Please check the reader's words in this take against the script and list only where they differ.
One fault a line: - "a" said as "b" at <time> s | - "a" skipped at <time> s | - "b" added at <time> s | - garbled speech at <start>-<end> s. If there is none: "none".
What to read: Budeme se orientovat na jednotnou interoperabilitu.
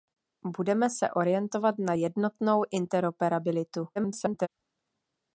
- garbled speech at 4.0-4.5 s